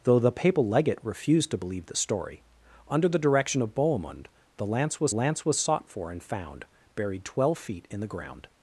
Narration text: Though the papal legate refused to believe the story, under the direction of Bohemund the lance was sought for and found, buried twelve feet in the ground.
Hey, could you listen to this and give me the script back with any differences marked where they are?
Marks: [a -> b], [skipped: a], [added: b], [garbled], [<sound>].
Though the papal legate refused to believe the story, under the direction of Bohemund the lance was [added: lance was] sought for and found, buried twelve feet in the ground.